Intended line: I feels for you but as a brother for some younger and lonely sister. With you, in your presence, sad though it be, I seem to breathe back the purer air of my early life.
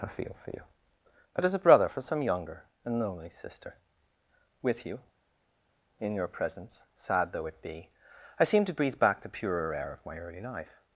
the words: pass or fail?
fail